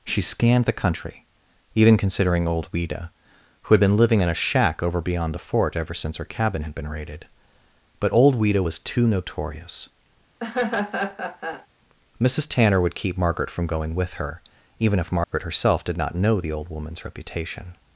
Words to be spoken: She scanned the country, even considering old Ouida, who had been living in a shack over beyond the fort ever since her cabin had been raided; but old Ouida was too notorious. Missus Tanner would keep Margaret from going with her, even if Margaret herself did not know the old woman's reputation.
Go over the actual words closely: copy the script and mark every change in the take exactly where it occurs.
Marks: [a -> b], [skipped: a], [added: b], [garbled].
She scanned the country, even considering old Ouida, who had been living in a shack over beyond the fort ever since her cabin had been raided; but old Ouida was too notorious. Missus Tanner would keep Margaret from going with her, even if Margaret herself did not know the old woman's reputation.